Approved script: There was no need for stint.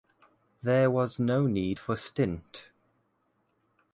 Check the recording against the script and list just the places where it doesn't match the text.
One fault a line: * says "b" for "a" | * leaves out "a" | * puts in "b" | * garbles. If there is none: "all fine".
all fine